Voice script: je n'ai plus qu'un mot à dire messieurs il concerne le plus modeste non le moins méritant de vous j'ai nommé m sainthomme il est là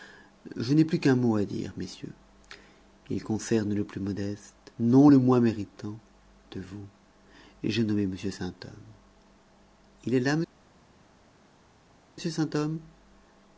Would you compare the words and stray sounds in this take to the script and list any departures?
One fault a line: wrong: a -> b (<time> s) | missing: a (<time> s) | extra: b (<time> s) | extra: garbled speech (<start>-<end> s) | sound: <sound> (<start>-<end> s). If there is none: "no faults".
no faults